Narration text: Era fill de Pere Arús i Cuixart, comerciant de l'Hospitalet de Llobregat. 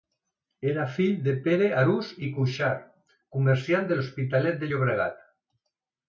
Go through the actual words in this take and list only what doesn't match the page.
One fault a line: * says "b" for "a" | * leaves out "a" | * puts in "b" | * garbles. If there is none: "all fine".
all fine